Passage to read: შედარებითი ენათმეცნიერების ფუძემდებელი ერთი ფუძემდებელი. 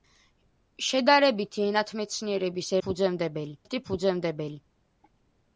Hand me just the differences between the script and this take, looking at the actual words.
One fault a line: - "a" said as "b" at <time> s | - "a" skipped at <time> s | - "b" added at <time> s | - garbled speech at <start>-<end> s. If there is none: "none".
none